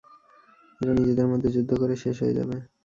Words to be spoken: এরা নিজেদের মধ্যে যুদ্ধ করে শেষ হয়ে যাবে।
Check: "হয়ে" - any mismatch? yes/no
no